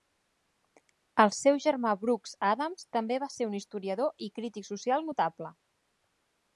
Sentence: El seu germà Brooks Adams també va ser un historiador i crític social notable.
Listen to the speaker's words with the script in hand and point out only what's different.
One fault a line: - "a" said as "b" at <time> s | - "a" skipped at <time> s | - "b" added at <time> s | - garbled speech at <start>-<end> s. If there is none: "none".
none